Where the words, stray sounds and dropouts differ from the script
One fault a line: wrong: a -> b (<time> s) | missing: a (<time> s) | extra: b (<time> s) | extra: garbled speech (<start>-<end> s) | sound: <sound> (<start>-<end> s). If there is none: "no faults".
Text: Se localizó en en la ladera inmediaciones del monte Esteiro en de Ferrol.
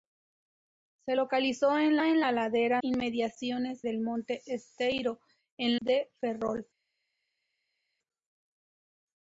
no faults